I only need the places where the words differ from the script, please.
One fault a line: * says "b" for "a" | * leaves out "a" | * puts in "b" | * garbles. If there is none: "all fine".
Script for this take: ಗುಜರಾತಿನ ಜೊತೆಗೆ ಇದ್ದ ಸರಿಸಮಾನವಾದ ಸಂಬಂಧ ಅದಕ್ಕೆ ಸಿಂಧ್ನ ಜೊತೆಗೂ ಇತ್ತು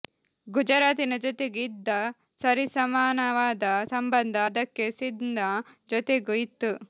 all fine